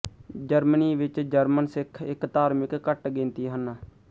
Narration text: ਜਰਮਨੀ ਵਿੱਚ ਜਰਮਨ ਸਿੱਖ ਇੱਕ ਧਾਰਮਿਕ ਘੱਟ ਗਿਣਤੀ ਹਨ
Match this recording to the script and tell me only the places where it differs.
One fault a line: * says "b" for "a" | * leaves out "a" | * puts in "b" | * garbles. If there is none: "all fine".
all fine